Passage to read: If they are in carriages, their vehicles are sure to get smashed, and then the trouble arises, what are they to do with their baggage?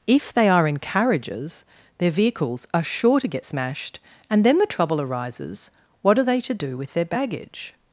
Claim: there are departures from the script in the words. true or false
false